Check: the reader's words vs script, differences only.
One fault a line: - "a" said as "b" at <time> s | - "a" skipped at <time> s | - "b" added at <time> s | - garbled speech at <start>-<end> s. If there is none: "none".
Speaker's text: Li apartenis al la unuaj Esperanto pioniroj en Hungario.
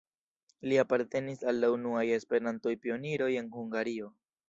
none